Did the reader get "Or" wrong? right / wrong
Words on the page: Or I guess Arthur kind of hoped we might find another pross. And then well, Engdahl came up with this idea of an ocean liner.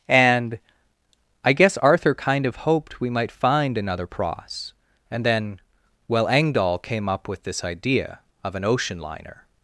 wrong